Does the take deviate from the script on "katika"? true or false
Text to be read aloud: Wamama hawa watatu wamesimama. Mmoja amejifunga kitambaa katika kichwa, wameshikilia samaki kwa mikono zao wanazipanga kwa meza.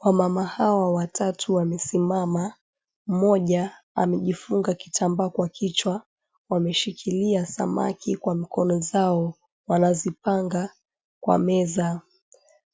true